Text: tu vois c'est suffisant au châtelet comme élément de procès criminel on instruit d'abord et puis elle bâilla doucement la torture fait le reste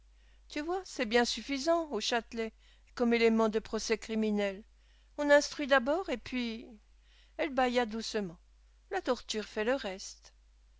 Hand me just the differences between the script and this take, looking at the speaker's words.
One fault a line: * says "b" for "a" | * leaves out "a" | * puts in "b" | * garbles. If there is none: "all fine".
* puts in "bien"